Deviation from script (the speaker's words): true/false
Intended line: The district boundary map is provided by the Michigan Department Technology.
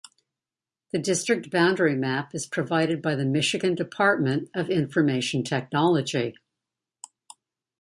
true